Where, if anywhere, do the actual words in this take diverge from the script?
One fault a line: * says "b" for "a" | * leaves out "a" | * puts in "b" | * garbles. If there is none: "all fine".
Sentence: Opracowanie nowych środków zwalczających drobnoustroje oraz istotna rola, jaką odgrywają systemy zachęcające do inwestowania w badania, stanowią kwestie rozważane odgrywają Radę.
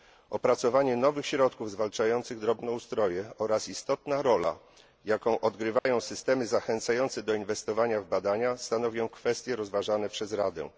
* says "przez" for "odgrywają"